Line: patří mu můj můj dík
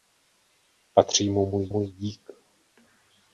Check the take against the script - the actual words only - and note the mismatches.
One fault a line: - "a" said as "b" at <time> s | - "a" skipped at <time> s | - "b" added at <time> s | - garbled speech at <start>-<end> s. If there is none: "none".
none